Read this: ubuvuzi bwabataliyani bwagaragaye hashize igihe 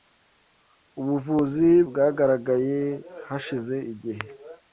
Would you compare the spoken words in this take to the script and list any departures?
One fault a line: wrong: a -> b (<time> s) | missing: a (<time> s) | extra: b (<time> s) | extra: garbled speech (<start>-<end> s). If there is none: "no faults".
missing: bwabataliyani (1.7 s)